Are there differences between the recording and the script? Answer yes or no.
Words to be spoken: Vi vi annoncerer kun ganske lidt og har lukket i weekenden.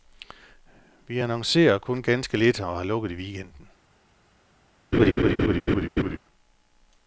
yes